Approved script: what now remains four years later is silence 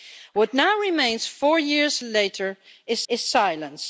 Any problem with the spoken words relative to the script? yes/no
yes